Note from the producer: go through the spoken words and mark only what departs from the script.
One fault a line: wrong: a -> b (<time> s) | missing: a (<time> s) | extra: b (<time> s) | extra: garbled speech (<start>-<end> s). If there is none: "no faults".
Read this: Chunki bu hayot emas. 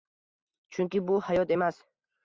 no faults